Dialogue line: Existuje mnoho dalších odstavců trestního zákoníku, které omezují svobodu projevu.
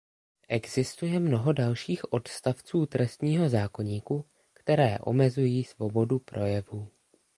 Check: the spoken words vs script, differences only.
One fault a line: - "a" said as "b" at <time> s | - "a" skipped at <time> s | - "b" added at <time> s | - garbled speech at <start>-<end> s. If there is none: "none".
none